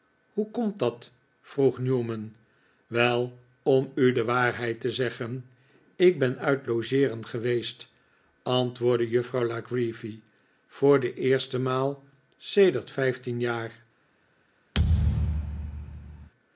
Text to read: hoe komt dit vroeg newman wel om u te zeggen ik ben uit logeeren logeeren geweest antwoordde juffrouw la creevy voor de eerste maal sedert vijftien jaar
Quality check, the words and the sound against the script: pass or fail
fail